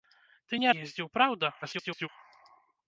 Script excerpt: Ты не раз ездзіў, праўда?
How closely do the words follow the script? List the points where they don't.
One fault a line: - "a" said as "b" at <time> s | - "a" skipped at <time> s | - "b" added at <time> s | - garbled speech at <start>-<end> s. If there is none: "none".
- "раз" skipped at 0.7 s
- garbled speech at 1.6-2.1 s